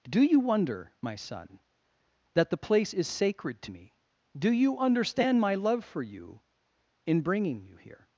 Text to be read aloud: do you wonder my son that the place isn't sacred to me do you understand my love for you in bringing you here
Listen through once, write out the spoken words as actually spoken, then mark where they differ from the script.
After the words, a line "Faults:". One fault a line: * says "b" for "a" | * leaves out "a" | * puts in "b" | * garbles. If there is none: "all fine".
do you wonder my son that the place is sacred to me do you understand my love for you in bringing you here
Faults:
* says "is" for "isn't"